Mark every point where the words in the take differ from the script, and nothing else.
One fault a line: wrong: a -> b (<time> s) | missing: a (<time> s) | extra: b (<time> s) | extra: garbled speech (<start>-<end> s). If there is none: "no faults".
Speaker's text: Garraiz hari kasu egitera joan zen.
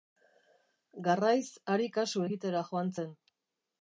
no faults